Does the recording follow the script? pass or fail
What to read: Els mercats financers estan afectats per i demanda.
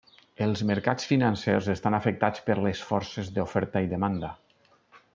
fail